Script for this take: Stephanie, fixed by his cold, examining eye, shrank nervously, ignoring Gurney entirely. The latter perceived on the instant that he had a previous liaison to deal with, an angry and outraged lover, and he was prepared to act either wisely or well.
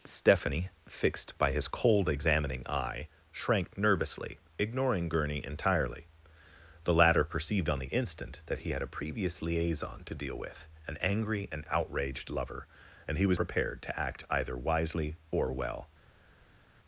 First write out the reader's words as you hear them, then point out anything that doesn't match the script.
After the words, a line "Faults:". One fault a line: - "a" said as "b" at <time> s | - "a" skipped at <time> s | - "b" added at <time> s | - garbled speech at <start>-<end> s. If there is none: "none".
Stephanie, fixed by his cold, examining eye, shrank nervously, ignoring Gurney entirely. The latter perceived on the instant that he had a previous liaison to deal with, an angry and outraged lover, and he was prepared to act either wisely or well.
Faults:
none